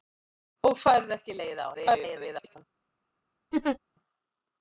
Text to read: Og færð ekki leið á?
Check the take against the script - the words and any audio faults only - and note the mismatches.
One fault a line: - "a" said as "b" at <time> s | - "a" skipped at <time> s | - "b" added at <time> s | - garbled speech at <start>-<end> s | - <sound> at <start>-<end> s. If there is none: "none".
- garbled speech at 1.7-2.6 s
- laugh at 3.5-3.8 s